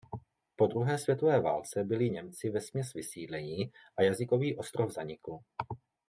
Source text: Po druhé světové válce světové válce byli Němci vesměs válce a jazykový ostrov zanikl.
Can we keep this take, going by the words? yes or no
no